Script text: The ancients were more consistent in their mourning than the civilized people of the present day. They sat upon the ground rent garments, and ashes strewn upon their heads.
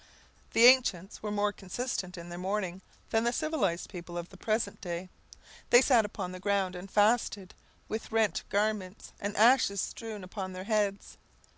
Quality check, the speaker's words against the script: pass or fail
fail